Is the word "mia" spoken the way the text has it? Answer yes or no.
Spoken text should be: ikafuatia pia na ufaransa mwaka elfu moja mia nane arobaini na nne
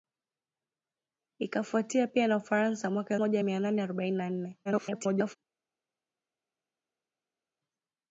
yes